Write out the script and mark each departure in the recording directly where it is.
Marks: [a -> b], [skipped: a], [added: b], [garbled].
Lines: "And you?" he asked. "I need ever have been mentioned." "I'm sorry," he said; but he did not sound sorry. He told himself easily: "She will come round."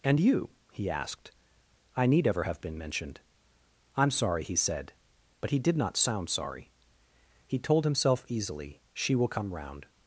"And you?" he asked. "I need ever have been mentioned." "I'm sorry," he said; but he did not sound sorry. He told himself easily: "She will come round."